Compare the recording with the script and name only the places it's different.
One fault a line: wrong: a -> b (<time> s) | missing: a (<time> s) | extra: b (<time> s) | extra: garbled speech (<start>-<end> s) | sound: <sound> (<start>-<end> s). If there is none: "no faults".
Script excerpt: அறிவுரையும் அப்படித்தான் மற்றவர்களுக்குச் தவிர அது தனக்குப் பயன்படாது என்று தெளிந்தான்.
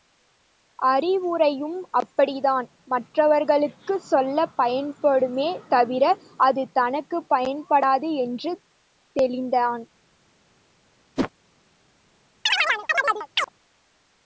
extra: சொல்லப் பயன்படுமே (4.1 s)
sound: whoosh (11.2-11.3 s)
sound: chirp (12.5-13.5 s)